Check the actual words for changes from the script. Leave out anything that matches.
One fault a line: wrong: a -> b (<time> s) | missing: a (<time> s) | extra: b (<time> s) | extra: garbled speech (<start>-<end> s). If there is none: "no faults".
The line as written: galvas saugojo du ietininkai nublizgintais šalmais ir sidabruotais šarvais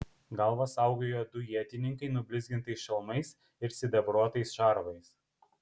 no faults